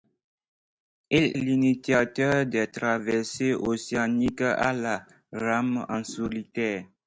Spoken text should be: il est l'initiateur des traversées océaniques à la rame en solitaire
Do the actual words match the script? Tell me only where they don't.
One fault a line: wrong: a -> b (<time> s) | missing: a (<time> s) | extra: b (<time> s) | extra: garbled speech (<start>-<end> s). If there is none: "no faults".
missing: est (1.4 s)